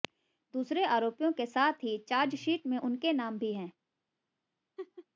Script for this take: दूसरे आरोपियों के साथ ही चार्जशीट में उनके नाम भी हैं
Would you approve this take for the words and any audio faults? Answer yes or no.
no